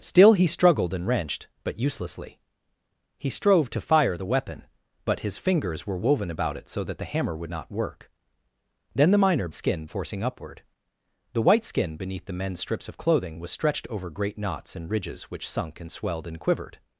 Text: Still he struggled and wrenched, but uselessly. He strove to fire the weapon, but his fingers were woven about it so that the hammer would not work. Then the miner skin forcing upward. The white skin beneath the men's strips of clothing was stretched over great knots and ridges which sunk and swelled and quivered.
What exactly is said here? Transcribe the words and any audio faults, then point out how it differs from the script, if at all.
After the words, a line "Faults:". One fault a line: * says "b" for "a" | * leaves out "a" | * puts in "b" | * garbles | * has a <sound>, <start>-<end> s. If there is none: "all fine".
Still he struggled and wrenched, but uselessly. He strove to fire the weapon, but his fingers were woven about it so that the hammer would not work. Then the miner skin forcing upward. The white skin beneath the men's strips of clothing was stretched over great knots and ridges which sunk and swelled and quivered.
Faults:
all fine